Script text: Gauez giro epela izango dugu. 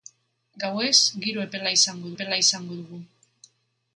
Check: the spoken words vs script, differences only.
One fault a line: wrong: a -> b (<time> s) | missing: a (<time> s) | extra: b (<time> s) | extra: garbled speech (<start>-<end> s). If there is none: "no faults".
extra: epela izango (2.1 s)